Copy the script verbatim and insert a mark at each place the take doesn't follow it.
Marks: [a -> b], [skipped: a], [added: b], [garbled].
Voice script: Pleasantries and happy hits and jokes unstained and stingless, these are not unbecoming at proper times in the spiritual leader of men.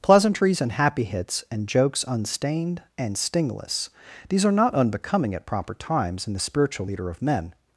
Pleasantries and happy hits and jokes unstained and stingless, these are not unbecoming at proper times in the spiritual leader of men.